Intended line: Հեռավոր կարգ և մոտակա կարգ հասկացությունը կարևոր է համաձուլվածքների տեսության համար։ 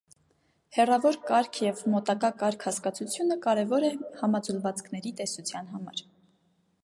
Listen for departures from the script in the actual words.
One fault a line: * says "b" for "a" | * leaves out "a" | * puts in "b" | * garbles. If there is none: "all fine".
all fine